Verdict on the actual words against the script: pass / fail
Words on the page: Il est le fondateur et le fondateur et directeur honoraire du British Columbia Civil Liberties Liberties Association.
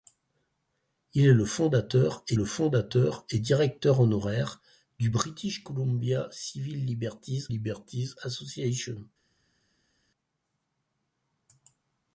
pass